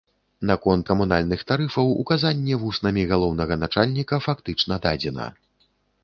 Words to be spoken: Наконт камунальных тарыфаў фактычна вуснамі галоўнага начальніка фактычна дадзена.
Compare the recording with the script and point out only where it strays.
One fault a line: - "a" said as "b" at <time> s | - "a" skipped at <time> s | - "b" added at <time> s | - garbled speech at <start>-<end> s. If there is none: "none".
- "фактычна" said as "указанне" at 2.0 s